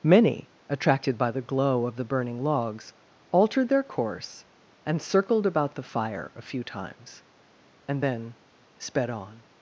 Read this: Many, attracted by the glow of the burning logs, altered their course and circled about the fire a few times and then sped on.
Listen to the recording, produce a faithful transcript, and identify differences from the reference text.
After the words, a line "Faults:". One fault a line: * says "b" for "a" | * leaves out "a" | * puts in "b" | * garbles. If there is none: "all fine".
Many, attracted by the glow of the burning logs, altered their course and circled about the fire a few times and then sped on.
Faults:
all fine